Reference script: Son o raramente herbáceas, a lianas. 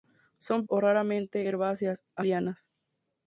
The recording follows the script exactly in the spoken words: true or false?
true